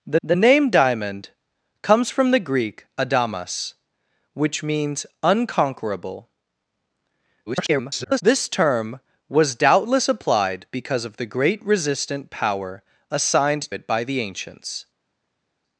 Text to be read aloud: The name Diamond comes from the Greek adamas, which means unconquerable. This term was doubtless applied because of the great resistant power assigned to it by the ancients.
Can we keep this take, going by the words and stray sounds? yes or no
no